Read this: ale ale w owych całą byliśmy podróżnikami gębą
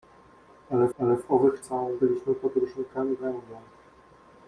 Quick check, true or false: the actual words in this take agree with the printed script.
true